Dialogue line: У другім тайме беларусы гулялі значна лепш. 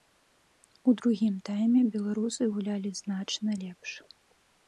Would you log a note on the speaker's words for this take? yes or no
no